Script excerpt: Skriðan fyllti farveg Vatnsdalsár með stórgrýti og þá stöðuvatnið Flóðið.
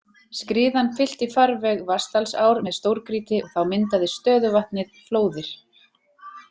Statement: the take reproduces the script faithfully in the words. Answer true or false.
false